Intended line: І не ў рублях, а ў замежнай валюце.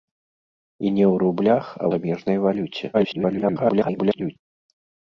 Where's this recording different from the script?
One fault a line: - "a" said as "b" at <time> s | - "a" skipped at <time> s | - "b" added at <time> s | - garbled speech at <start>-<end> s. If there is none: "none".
- "ў" skipped at 1.9 s
- garbled speech at 2.9-4.4 s